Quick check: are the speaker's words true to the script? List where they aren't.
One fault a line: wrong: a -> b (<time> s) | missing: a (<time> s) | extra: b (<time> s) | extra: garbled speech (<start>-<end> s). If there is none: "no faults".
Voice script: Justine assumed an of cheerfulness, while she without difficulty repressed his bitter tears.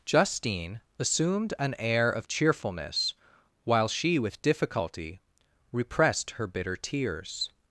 extra: air (1.8 s)
wrong: without -> with (4.2 s)
wrong: his -> her (6.3 s)